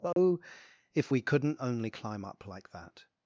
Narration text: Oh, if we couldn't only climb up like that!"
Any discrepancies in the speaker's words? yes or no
no